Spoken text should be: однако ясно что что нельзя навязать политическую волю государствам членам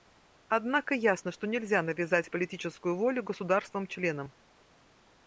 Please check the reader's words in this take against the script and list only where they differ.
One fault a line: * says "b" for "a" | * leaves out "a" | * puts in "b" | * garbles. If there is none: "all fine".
* leaves out "что"